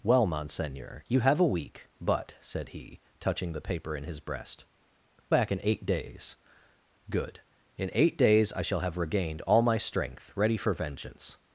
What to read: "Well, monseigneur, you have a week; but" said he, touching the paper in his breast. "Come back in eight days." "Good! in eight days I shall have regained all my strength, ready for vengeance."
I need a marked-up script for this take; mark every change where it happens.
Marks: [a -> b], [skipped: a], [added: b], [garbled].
"Well, monseigneur, you have a week; but" said he, touching the paper in his breast. [skipped: "Come] back in eight days." "Good! in eight days I shall have regained all my strength, ready for vengeance."